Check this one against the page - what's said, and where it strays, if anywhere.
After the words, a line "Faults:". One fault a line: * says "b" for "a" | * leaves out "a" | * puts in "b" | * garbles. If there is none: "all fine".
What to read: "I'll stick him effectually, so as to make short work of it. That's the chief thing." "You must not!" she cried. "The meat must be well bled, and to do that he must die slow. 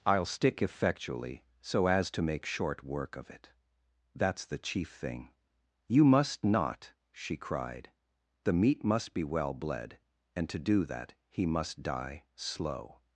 "I'll stick effectually, so as to make short work of it. That's the chief thing." "You must not!" she cried. "The meat must be well bled, and to do that he must die slow.
Faults:
* leaves out "him"